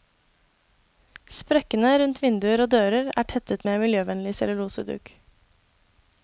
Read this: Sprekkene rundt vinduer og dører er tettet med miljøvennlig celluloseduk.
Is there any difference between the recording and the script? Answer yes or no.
no